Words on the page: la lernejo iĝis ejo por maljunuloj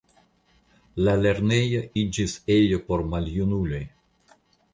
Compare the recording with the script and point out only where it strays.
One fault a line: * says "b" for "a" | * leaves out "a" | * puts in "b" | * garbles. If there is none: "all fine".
all fine